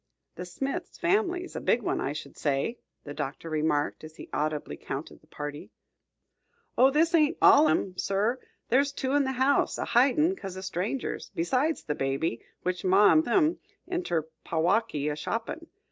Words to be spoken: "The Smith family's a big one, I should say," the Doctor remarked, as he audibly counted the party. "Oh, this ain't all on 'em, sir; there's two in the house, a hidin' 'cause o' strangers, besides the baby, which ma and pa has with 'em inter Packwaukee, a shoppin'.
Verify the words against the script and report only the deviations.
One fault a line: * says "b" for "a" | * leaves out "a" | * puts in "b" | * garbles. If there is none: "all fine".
* leaves out "on"
* leaves out "pa has with"